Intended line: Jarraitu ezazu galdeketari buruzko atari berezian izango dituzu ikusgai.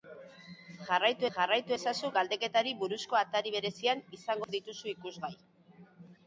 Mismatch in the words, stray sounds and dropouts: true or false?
true